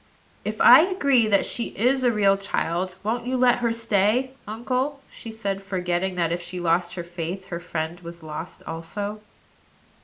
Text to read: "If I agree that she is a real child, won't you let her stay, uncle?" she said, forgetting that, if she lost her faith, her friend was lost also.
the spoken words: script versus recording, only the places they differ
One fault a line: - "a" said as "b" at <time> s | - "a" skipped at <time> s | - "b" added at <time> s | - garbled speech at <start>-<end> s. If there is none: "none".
none